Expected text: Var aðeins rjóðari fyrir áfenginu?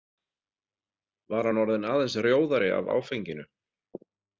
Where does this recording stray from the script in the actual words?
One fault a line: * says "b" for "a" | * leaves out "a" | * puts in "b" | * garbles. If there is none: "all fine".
* puts in "hann orðinn"
* says "af" for "fyrir"